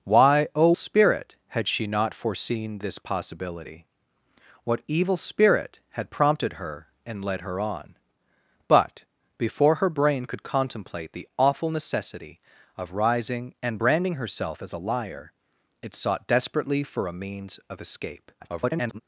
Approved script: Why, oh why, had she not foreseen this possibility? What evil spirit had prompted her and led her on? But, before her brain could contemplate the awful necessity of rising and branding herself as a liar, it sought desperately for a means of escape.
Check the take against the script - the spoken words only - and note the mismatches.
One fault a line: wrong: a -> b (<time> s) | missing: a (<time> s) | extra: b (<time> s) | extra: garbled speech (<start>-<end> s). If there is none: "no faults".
wrong: why -> spirit (0.7 s)
extra: garbled speech (18.4-19.0 s)